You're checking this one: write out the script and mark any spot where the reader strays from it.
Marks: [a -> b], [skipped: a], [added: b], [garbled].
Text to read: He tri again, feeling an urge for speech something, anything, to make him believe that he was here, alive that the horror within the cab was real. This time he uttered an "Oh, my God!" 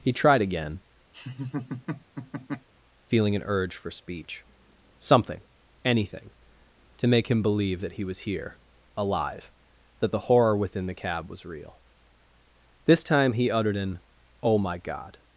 He [tri -> tried] again, feeling an urge for speech something, anything, to make him believe that he was here, alive that the horror within the cab was real. This time he uttered an "Oh, my God!"